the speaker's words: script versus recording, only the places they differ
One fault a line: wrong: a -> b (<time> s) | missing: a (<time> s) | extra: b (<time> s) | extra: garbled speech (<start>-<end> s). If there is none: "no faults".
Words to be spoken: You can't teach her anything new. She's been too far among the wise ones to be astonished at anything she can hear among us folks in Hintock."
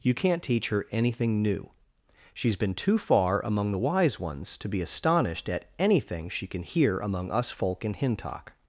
wrong: folks -> folk (7.5 s)